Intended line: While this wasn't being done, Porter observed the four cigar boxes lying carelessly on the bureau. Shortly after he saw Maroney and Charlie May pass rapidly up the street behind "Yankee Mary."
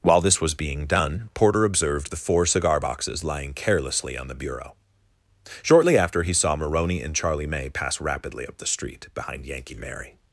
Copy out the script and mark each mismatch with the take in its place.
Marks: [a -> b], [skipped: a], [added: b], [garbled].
While this [wasn't -> was] being done, Porter observed the four cigar boxes lying carelessly on the bureau. Shortly after he saw Maroney and Charlie May pass rapidly up the street behind "Yankee Mary."